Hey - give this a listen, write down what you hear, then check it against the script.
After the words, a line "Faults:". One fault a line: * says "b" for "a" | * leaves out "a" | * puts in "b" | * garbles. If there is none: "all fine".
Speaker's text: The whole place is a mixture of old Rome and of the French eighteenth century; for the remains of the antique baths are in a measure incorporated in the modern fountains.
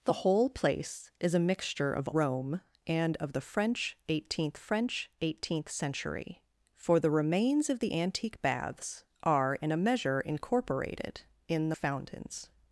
The whole place is a mixture of Rome and of the French eighteenth French eighteenth century; for the remains of the antique baths are in a measure incorporated in the fountains.
Faults:
* leaves out "old"
* puts in "French eighteenth"
* leaves out "modern"